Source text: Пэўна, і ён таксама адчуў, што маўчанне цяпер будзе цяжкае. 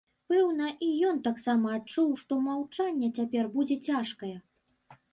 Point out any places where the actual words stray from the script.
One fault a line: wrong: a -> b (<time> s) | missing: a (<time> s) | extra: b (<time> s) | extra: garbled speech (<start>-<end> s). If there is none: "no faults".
no faults